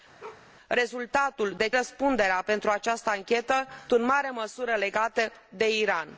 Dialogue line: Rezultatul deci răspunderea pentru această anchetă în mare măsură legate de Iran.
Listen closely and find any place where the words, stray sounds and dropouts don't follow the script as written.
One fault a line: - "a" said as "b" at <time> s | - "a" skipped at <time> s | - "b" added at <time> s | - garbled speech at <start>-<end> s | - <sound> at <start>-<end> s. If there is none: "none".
- bark at 0.2-0.5 s